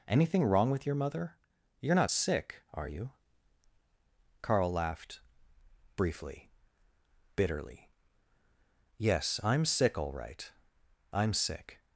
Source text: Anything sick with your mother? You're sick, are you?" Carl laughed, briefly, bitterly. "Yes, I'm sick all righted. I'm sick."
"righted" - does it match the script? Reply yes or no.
no